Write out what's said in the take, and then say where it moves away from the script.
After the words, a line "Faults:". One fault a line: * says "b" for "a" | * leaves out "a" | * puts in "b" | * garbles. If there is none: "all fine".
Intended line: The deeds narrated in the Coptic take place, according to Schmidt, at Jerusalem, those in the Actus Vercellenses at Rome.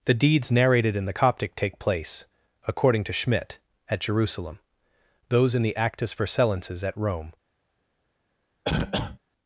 The deeds narrated in the Coptic take place, according to Schmidt, at Jerusalem, those in the Actus Vercellenses at Rome.
Faults:
all fine